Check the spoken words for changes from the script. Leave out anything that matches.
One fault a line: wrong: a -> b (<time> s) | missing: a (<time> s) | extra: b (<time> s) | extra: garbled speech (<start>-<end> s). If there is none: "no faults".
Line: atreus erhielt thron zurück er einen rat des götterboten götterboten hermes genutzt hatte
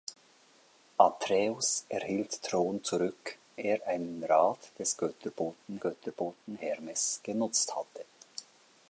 no faults